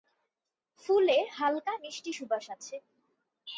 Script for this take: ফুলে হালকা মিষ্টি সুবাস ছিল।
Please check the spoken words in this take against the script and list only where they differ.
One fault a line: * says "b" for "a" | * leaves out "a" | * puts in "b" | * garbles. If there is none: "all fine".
* says "আছে" for "ছিল"